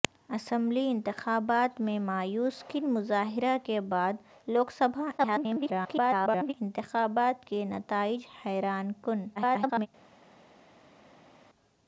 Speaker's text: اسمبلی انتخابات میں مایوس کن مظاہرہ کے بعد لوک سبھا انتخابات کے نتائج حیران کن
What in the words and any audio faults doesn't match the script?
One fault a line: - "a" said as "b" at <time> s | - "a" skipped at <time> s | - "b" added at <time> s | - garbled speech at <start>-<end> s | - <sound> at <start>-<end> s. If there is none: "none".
- garbled speech at 5.2-6.5 s
- garbled speech at 9.4-9.9 s